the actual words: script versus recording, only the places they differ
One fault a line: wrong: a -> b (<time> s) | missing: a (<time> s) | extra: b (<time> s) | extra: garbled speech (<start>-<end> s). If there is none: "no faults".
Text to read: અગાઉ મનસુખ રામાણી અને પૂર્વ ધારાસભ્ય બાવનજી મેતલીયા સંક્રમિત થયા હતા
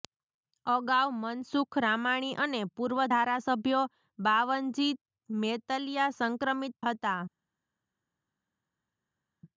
missing: થયા (6.8 s)